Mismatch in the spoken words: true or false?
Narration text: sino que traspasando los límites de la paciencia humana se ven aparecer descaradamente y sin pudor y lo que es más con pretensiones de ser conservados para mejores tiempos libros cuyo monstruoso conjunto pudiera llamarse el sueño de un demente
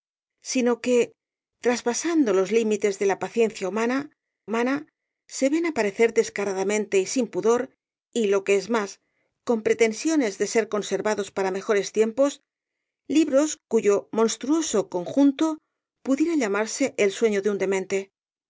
true